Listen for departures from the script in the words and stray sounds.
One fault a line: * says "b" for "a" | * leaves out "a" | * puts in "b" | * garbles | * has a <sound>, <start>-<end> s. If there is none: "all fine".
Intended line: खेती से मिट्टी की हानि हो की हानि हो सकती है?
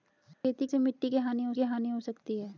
* has a dropout, 0.3-0.4 s